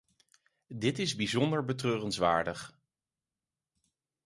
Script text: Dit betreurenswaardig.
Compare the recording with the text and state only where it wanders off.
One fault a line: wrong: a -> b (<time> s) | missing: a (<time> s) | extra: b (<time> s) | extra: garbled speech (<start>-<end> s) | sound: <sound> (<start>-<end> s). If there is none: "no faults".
extra: is bijzonder (1.0 s)